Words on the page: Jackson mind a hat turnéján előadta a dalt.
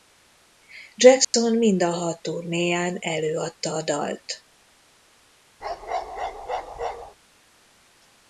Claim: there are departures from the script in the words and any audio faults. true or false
true